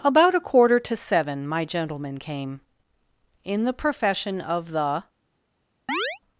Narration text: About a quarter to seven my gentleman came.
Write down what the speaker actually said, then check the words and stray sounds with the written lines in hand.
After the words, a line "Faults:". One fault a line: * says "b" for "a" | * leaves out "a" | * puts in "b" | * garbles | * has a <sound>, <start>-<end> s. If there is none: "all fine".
About a quarter to seven my gentleman came. In the profession of the
Faults:
* puts in "In the profession of the"
* has a chirp, 5.9-6.2 s